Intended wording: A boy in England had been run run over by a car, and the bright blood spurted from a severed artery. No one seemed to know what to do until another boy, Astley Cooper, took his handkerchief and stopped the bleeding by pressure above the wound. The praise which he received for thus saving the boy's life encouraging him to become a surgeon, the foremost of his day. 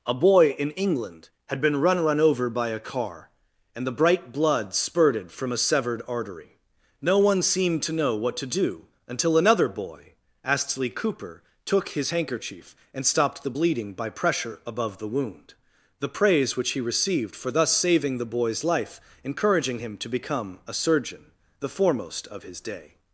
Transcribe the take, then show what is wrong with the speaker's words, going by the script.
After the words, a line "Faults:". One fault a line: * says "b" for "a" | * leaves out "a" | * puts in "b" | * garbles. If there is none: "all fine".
A boy in England had been run run over by a car, and the bright blood spurted from a severed artery. No one seemed to know what to do until another boy, Astley Cooper, took his handkerchief and stopped the bleeding by pressure above the wound. The praise which he received for thus saving the boy's life encouraging him to become a surgeon, the foremost of his day.
Faults:
all fine